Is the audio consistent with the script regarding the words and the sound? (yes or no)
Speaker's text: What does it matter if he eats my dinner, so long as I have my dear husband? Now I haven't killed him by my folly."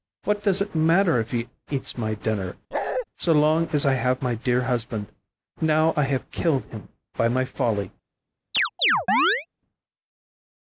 no